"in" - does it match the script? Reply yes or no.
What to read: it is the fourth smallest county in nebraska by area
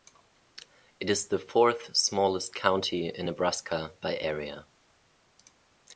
yes